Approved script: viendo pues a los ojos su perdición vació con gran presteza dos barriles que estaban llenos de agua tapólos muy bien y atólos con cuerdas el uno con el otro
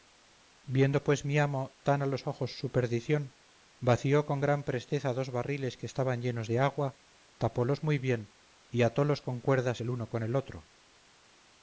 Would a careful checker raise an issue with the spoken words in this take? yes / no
yes